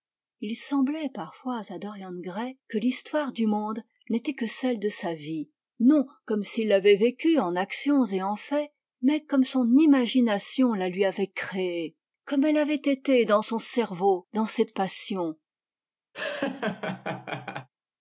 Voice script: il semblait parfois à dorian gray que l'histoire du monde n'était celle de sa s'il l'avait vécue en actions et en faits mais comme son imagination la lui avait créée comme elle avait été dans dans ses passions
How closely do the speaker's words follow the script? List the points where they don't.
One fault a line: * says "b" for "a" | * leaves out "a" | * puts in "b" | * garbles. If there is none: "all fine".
* puts in "que"
* puts in "vie non comme"
* puts in "son cerveau"